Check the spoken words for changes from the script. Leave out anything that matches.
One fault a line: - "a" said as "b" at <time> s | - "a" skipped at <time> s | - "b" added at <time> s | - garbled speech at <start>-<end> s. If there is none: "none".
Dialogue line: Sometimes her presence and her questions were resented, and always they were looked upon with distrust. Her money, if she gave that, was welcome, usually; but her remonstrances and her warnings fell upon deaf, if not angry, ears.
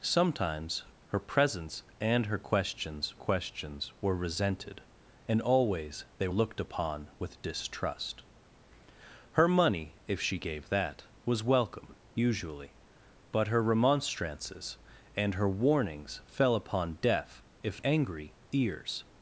- "questions" added at 3.1 s
- "were" skipped at 6.3 s
- "not" skipped at 17.8 s